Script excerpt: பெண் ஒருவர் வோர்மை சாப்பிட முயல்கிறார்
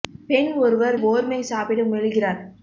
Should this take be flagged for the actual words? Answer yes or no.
no